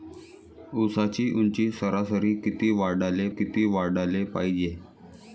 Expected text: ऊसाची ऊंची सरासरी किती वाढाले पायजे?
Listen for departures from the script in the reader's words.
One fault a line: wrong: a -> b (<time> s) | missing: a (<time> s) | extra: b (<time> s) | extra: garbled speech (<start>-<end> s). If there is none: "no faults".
extra: किती वाढाले (3.3 s)